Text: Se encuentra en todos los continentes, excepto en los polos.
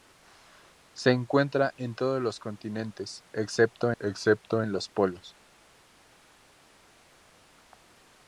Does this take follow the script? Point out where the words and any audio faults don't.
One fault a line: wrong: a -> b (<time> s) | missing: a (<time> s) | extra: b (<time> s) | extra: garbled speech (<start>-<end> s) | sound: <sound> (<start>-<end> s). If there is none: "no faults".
extra: excepto (4.0 s)